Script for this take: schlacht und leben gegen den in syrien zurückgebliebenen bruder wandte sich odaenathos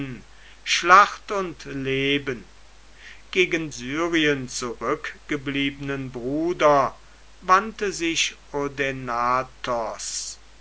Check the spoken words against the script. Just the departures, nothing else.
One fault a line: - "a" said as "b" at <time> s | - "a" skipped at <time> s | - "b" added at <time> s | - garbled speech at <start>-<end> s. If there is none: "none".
- "den in" skipped at 3.7 s